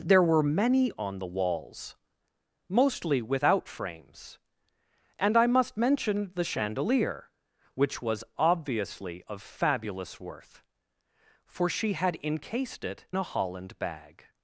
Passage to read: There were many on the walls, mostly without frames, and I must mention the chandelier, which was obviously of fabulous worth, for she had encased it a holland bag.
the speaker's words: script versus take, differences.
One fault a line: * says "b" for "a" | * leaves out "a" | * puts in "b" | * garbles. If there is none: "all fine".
all fine